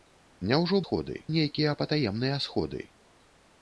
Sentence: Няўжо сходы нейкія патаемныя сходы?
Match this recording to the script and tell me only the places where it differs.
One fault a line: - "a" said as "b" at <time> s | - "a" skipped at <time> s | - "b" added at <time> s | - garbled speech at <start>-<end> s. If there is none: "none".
none